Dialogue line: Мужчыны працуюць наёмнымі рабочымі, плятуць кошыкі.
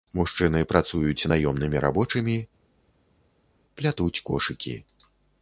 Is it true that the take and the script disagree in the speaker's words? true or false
false